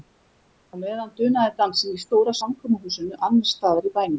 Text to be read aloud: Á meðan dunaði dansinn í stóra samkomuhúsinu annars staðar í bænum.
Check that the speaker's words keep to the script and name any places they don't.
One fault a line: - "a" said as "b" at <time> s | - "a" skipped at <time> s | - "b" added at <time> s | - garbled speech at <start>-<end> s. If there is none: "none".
none